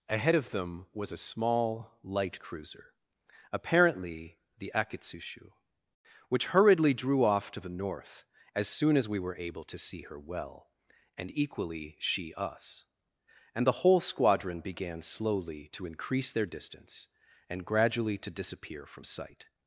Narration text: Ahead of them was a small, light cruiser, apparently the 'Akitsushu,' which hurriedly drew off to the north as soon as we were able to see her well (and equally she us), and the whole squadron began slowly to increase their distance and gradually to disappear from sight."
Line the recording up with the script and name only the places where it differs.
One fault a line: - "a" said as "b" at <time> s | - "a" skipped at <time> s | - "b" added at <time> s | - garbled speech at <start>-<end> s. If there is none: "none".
none